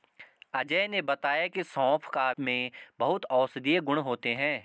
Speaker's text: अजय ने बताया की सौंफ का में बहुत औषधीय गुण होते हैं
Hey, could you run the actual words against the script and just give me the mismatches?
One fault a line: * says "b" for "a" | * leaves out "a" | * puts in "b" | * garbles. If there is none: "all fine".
all fine